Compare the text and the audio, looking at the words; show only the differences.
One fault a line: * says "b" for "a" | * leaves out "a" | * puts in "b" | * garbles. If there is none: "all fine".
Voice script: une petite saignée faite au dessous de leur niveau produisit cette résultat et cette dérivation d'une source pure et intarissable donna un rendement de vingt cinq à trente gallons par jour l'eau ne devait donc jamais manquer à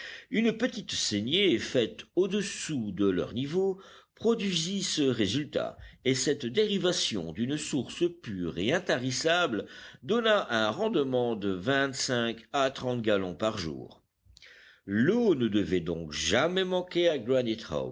* says "ce" for "cette"